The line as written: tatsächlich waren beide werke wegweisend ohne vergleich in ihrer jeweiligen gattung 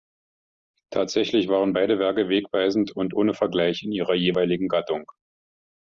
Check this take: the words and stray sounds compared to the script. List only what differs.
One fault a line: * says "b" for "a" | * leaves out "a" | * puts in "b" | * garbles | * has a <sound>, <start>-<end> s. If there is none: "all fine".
* puts in "und"